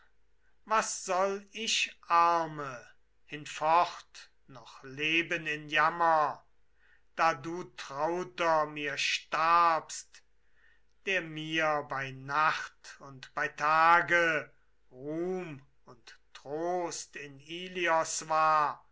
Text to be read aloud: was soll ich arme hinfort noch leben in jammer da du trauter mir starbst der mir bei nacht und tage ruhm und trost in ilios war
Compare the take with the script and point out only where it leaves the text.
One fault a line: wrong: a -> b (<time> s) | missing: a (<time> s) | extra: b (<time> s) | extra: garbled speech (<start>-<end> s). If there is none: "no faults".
extra: bei (13.3 s)